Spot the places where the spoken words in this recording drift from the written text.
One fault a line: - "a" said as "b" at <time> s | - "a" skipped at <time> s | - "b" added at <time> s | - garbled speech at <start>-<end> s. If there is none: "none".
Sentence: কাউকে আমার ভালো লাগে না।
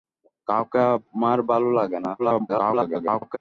- garbled speech at 2.2-3.4 s